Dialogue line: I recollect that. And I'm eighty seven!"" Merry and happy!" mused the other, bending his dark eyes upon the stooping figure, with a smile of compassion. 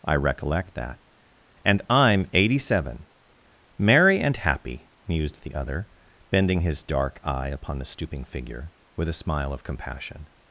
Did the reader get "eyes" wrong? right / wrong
wrong